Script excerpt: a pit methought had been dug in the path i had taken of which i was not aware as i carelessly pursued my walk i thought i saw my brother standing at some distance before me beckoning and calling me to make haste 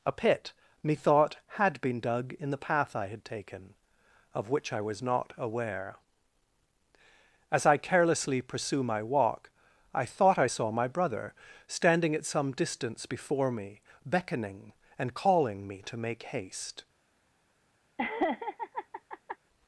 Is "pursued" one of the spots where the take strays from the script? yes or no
yes